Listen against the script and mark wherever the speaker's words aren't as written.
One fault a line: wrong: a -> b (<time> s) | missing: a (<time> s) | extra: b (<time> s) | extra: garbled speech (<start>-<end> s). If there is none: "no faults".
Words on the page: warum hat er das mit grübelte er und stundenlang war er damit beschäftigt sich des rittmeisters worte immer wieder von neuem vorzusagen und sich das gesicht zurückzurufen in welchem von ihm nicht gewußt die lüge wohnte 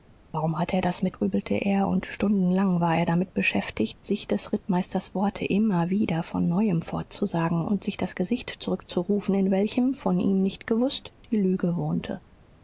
no faults